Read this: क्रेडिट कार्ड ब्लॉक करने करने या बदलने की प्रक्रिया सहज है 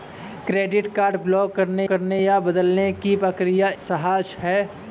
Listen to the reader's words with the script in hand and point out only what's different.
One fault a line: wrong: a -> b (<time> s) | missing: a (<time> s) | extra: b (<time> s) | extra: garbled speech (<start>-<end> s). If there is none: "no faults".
no faults